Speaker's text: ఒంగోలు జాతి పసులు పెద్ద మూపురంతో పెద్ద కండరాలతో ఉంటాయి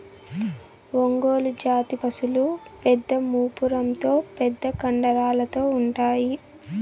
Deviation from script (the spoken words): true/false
false